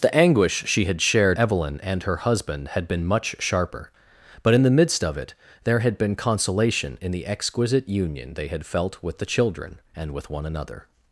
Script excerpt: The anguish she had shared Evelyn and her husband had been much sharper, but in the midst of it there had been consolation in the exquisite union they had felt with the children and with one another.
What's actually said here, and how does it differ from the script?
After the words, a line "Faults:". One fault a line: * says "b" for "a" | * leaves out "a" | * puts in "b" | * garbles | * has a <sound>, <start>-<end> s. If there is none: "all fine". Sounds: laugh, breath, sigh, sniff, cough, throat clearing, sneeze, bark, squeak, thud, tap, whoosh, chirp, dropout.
The anguish she had shared Evelyn and her husband had been much sharper, but in the midst of it there had been consolation in the exquisite union they had felt with the children and with one another.
Faults:
all fine